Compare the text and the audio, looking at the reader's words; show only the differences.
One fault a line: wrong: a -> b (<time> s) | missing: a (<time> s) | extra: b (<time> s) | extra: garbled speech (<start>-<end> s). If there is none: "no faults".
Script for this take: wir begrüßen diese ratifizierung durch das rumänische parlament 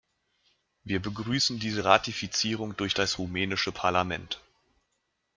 no faults